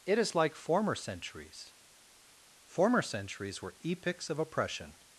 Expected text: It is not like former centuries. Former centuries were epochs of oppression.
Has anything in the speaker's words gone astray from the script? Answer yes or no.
yes